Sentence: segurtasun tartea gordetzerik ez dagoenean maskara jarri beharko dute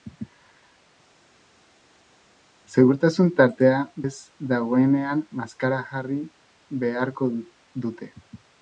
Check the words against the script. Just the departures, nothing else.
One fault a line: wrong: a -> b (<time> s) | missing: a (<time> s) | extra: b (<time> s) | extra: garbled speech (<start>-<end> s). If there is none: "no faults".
missing: gordetzerik (3.8 s)